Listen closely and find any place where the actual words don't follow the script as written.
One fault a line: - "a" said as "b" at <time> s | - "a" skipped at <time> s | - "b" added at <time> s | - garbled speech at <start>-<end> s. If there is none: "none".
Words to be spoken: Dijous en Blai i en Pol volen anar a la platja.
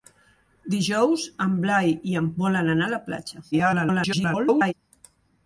- "Pol" skipped at 2.3 s
- garbled speech at 3.5-4.7 s